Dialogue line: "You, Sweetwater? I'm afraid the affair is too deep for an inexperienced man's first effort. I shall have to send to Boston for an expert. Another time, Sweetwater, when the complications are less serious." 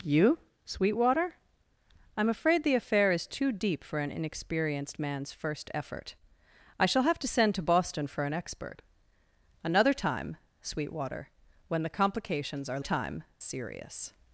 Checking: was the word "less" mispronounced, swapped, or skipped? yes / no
yes